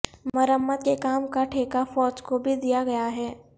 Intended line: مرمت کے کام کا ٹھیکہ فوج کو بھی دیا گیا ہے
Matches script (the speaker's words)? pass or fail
pass